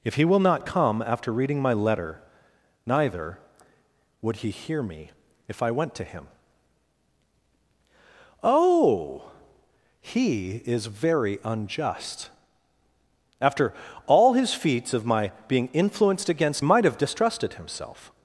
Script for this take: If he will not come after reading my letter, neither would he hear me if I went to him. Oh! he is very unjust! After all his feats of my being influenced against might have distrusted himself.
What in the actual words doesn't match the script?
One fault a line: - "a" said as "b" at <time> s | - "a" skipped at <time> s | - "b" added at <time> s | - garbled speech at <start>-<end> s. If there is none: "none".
none